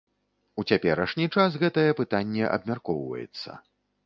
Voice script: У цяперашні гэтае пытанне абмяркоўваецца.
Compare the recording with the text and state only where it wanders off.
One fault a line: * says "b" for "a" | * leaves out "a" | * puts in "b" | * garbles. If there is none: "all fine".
* puts in "час"